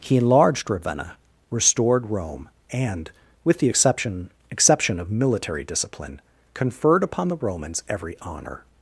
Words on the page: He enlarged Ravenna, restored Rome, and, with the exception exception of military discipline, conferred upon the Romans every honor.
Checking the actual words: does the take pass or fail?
pass